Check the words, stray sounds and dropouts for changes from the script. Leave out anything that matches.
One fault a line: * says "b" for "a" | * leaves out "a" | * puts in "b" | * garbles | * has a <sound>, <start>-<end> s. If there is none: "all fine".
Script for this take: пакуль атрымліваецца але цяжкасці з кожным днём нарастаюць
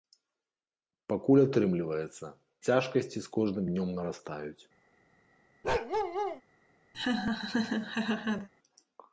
* leaves out "але"
* has a bark, 5.6-6.4 s
* has a laugh, 6.9-8.5 s